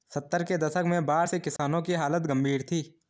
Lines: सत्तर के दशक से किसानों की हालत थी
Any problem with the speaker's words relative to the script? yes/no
yes